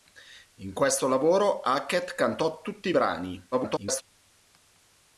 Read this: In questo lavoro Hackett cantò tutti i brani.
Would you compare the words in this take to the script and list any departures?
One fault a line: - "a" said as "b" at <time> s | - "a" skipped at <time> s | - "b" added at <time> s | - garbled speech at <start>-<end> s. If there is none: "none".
- garbled speech at 3.5-4.0 s